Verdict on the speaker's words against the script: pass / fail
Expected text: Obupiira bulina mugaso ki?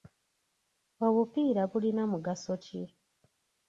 pass